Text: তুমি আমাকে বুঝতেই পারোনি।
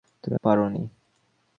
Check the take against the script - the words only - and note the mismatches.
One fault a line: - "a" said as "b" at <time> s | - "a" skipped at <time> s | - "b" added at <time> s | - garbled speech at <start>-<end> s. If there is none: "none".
- "আমাকে বুঝতেই" skipped at 0.3 s